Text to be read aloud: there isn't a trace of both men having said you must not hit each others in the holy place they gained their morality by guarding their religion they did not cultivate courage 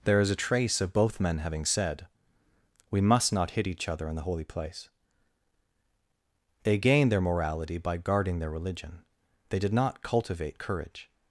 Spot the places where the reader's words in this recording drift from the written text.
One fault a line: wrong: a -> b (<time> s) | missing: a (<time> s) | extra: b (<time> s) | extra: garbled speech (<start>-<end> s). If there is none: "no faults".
wrong: isn't -> is (0.2 s)
wrong: you -> we (2.9 s)
wrong: others -> other (3.9 s)